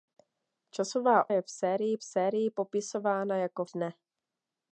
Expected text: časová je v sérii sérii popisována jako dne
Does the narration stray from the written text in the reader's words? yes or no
no